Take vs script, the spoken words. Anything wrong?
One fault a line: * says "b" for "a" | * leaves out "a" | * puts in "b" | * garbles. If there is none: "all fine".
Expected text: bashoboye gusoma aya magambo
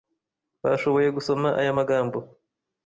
all fine